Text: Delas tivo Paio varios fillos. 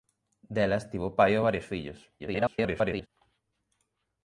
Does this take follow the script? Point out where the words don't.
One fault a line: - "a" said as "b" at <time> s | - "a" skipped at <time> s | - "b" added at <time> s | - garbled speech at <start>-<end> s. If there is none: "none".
- garbled speech at 2.2-3.1 s